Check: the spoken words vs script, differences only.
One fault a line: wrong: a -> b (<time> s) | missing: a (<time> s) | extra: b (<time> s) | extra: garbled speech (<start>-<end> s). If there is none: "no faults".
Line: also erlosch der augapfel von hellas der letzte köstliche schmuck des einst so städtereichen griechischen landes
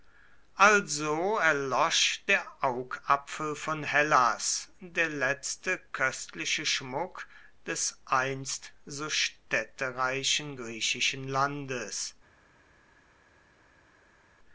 no faults